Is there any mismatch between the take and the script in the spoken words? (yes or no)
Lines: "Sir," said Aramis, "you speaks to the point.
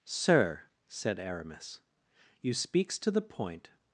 no